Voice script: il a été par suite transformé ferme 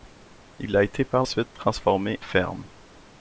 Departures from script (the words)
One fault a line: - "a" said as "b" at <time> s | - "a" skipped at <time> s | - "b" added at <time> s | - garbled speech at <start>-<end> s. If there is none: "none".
none